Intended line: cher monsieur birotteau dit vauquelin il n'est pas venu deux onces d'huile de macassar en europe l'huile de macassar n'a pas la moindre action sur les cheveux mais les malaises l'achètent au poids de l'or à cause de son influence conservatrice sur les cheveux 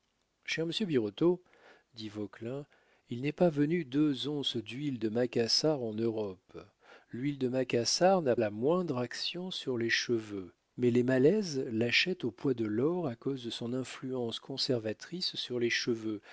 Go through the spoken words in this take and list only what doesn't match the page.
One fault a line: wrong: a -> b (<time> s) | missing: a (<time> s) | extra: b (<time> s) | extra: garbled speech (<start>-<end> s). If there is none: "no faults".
missing: pas (8.3 s)